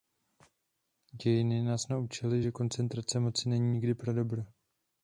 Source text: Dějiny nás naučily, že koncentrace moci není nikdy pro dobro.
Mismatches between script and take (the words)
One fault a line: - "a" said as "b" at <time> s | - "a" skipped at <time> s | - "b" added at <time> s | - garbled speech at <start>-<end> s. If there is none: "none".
none